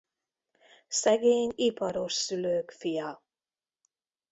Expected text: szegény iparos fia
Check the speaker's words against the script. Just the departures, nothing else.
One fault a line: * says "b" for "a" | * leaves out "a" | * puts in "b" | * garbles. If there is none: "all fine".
* puts in "szülők"